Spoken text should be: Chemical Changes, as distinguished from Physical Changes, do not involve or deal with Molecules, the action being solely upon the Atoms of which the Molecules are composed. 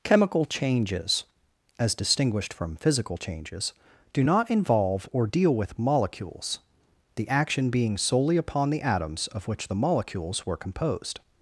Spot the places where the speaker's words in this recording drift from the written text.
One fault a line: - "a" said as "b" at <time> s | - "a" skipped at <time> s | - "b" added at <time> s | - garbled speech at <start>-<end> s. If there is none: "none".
- "are" said as "were" at 10.5 s